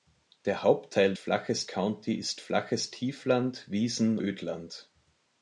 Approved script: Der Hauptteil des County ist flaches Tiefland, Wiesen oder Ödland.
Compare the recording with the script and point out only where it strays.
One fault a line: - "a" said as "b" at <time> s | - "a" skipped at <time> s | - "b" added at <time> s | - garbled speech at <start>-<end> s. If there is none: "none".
- "des" said as "flaches" at 1.2 s
- "oder" skipped at 4.2 s